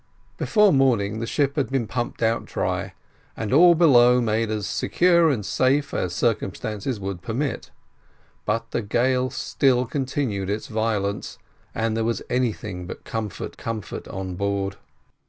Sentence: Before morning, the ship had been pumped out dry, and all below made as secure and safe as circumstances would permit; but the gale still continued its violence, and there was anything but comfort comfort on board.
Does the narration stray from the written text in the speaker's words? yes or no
no